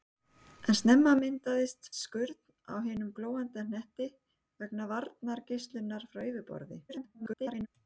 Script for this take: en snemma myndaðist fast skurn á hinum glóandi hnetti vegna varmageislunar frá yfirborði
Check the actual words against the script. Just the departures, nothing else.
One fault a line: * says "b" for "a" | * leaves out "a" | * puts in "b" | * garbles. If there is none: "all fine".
* leaves out "fast"
* garbles